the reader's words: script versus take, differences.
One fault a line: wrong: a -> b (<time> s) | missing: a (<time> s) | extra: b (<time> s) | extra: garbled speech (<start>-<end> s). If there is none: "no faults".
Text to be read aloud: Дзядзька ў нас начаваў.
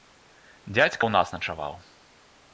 no faults